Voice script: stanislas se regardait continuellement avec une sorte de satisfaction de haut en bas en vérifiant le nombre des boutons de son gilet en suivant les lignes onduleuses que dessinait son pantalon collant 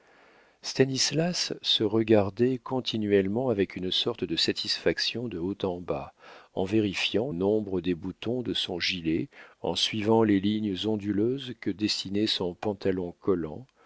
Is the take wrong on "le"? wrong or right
wrong